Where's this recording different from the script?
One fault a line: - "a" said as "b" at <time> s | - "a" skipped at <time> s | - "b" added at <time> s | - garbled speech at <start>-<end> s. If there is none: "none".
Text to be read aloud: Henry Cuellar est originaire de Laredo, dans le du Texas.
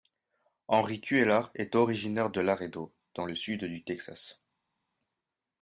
- "sud" added at 3.4 s